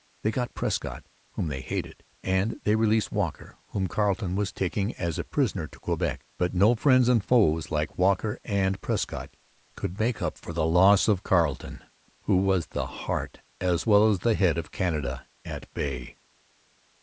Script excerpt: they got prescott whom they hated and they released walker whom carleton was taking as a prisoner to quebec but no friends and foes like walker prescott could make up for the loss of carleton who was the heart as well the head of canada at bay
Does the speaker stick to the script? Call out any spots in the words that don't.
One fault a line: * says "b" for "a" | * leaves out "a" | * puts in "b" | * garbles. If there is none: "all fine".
* puts in "and"
* puts in "as"